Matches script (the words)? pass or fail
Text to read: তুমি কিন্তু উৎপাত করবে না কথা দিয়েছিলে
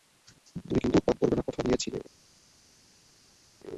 pass